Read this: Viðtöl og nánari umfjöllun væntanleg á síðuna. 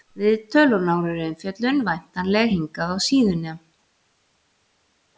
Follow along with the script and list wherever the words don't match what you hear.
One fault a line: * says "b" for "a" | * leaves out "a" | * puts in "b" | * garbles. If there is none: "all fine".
* puts in "hingað"